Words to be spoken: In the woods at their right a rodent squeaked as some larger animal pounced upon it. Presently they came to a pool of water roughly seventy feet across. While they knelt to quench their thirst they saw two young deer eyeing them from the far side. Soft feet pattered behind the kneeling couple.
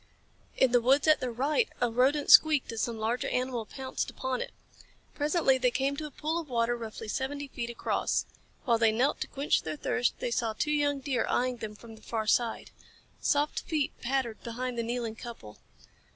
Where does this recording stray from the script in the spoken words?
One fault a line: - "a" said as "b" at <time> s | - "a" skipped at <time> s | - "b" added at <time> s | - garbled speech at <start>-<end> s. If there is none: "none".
none